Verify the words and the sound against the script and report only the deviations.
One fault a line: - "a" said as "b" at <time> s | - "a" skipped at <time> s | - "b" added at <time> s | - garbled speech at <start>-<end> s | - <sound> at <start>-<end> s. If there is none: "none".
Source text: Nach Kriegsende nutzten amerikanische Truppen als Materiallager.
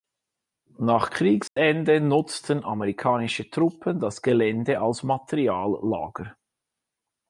- dropout at 1.5-1.6 s
- "das Gelände" added at 4.0 s